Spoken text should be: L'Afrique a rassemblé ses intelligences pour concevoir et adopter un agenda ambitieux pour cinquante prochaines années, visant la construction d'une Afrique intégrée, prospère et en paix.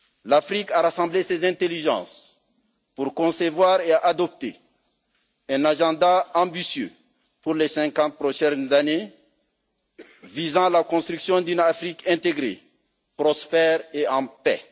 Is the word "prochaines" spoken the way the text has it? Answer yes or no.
yes